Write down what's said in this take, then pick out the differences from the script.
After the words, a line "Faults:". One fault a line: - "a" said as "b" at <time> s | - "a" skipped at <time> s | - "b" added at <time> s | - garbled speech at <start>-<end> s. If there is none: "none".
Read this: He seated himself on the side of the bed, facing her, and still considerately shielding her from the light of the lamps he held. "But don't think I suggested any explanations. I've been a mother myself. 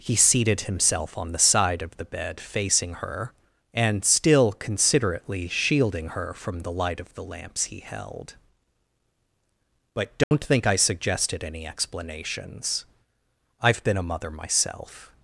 He seated himself on the side of the bed, facing her, and still considerately shielding her from the light of the lamps he held. "But don't think I suggested any explanations. I've been a mother myself.
Faults:
none